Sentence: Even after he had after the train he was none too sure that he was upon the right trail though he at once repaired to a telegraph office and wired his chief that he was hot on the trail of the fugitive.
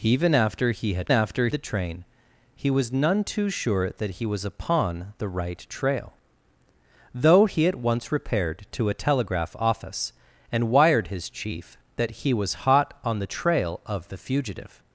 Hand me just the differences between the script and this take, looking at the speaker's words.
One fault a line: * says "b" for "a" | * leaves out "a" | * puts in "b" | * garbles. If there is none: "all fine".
all fine